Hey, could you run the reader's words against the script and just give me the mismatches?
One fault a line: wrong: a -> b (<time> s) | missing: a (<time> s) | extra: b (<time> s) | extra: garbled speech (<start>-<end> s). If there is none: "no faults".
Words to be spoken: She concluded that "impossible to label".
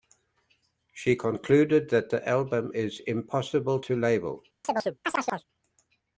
extra: the album is (2.1 s)